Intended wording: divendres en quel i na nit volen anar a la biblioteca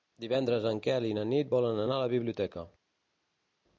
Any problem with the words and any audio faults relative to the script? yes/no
no